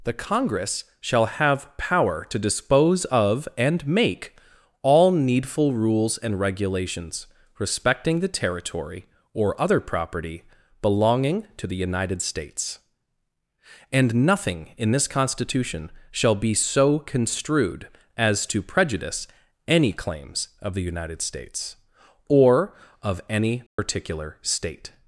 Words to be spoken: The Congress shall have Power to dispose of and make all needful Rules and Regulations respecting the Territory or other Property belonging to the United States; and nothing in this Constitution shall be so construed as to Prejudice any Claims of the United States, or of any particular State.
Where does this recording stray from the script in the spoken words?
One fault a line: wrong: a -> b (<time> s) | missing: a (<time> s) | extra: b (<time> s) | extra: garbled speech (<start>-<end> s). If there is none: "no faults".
no faults